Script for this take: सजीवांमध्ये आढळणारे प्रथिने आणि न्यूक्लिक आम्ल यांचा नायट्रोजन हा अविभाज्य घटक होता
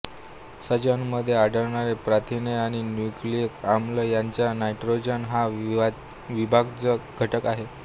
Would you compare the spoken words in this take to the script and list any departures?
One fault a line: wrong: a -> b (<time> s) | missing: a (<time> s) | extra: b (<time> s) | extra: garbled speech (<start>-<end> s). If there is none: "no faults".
wrong: होता -> आहे (7.5 s)